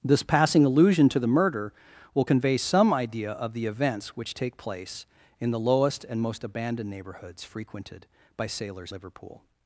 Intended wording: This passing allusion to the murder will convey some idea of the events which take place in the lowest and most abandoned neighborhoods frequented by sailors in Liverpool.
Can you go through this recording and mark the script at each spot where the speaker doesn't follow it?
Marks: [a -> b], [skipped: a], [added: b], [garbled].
This passing allusion to the murder will convey some idea of the events which take place in the lowest and most abandoned neighborhoods frequented by sailors [skipped: in] Liverpool.